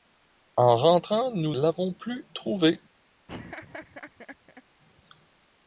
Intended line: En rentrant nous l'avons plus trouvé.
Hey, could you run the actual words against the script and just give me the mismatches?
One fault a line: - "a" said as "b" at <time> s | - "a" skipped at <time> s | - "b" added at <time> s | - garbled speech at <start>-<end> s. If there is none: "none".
none